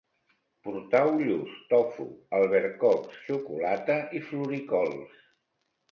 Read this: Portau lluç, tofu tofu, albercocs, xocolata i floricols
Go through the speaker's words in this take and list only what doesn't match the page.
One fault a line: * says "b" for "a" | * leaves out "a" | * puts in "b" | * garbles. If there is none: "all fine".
* leaves out "tofu"